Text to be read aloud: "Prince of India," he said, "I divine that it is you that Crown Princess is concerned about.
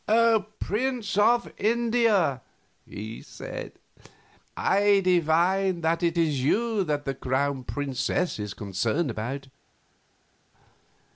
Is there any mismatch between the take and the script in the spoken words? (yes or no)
yes